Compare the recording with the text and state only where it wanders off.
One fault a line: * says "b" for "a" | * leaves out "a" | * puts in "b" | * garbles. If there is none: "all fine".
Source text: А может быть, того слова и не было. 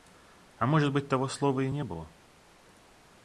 all fine